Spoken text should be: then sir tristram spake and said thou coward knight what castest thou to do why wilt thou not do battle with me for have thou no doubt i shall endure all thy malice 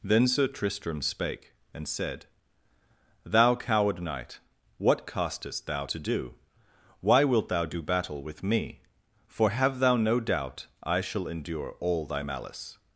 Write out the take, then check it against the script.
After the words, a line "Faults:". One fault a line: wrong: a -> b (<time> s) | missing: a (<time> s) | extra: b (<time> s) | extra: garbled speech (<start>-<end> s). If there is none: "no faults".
then sir tristram spake and said thou coward knight what castest thou to do why wilt thou do battle with me for have thou no doubt i shall endure all thy malice
Faults:
missing: not (7.6 s)